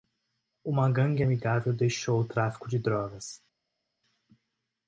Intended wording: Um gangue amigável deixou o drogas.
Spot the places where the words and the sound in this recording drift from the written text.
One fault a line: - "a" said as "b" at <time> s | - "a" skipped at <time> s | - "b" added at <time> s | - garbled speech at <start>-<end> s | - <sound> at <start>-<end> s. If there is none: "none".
- "Um" said as "Uma" at 0.6 s
- "tráfico de" added at 2.3 s